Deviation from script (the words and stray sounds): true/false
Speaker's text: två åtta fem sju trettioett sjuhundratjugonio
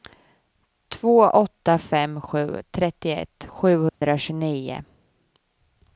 true